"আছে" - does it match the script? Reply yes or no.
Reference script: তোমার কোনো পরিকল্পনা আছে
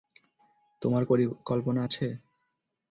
yes